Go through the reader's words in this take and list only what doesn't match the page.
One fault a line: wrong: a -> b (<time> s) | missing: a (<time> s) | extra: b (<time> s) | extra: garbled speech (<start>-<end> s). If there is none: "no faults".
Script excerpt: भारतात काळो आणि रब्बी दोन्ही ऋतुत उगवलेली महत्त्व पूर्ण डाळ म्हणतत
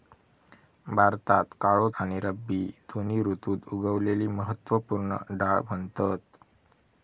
no faults